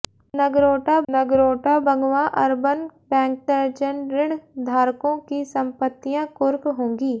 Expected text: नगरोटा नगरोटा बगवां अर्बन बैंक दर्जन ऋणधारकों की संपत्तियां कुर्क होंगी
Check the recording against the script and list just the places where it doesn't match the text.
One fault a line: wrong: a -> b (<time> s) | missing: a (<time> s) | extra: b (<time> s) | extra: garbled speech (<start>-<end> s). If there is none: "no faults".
no faults